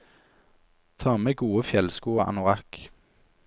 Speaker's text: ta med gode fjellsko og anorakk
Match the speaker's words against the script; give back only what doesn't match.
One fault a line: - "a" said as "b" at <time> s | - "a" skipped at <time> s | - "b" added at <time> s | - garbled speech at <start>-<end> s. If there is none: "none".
none